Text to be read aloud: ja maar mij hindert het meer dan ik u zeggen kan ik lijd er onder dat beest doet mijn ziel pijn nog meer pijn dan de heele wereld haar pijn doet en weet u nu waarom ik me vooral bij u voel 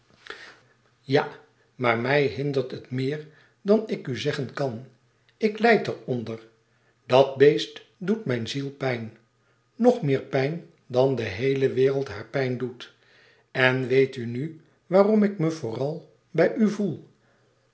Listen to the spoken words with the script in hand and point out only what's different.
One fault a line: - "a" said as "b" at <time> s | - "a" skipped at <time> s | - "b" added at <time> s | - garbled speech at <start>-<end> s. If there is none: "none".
none